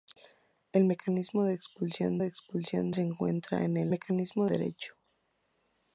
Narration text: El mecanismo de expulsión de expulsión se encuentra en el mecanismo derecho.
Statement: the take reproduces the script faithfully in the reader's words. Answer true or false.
true